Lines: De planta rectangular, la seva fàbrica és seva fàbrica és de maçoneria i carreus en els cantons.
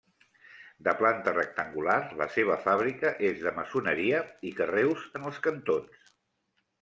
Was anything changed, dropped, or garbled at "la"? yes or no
no